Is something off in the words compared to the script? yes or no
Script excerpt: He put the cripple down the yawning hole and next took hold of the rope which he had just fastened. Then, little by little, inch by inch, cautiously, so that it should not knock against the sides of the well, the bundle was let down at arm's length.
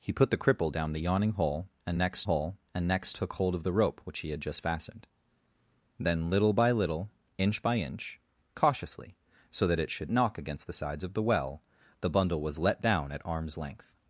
yes